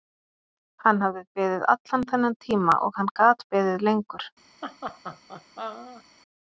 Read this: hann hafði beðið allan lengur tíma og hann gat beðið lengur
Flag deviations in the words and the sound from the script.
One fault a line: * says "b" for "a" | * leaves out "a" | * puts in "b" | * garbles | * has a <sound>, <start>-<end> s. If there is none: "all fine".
* says "þennan" for "lengur"
* has a laugh, 4.6-6.0 s